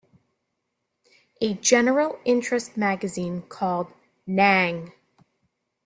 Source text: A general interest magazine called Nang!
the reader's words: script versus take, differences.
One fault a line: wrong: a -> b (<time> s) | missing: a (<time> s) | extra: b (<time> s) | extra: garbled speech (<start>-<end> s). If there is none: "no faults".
no faults